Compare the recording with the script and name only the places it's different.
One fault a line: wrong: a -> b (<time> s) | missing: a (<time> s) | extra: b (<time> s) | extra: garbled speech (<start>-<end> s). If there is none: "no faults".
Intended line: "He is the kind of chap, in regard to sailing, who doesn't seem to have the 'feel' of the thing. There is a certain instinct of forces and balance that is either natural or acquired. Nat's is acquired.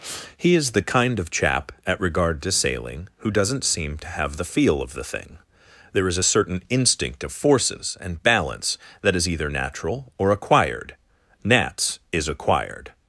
wrong: in -> at (1.9 s)